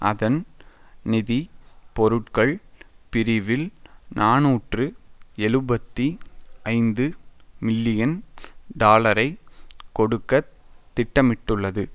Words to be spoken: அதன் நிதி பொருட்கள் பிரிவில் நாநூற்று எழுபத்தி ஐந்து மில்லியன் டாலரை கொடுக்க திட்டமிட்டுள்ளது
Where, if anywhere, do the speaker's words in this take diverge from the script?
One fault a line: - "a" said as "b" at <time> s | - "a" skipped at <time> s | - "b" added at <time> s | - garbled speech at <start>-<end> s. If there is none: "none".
none